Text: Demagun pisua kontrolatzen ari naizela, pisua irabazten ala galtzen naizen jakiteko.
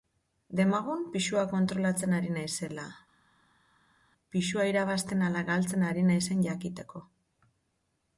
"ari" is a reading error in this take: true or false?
false